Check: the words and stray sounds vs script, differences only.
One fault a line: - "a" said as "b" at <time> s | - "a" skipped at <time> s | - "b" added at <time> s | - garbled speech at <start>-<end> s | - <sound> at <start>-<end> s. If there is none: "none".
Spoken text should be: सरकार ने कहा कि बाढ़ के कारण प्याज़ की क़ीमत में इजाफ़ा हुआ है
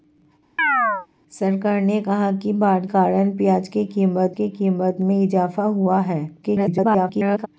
- chirp at 0.6-1.1 s
- "के" skipped at 2.8 s
- "की क़ीमत" added at 4.3 s
- garbled speech at 6.4-7.5 s